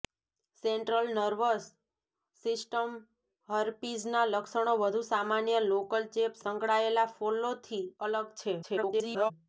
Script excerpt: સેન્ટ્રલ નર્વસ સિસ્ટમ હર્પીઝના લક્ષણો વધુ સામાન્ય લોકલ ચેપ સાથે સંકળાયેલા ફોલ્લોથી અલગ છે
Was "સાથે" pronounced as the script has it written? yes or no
no